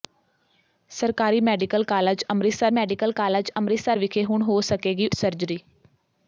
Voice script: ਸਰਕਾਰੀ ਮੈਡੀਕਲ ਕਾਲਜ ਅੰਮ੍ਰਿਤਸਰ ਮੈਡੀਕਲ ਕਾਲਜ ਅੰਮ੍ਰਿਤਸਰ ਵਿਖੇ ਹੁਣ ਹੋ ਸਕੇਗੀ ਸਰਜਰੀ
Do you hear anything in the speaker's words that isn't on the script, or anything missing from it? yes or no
no